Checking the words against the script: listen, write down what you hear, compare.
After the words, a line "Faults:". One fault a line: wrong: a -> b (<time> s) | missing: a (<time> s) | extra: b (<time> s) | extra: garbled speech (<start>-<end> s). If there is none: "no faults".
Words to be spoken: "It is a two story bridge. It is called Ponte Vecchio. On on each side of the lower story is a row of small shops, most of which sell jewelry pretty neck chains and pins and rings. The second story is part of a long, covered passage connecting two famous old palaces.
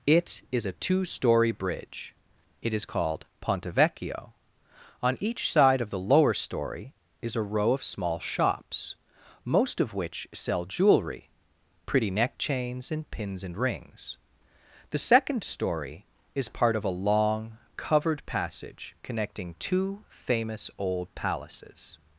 "It is a two story bridge. It is called Ponte Vecchio. On each side of the lower story is a row of small shops, most of which sell jewelry pretty neck chains and pins and rings. The second story is part of a long, covered passage connecting two famous old palaces.
Faults:
missing: on (5.2 s)